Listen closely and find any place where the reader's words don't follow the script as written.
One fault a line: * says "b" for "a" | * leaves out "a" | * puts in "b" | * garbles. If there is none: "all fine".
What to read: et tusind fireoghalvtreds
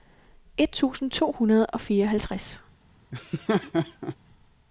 * puts in "to hundrede og"